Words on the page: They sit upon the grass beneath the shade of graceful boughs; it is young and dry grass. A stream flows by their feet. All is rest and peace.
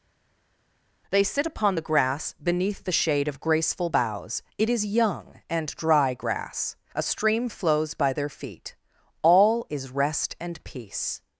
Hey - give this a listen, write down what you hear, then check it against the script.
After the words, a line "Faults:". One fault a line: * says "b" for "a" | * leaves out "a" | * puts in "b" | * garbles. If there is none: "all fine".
They sit upon the grass beneath the shade of graceful boughs; it is young and dry grass. A stream flows by their feet. All is rest and peace.
Faults:
all fine